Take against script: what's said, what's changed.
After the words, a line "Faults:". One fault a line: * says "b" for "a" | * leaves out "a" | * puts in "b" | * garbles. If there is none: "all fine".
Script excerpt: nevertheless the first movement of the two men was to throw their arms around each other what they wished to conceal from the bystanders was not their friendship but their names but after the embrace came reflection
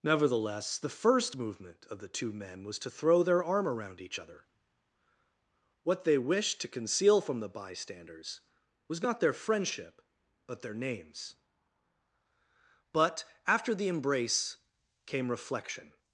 nevertheless the first movement of the two men was to throw their arm around each other what they wished to conceal from the bystanders was not their friendship but their names but after the embrace came reflection
Faults:
* says "arm" for "arms"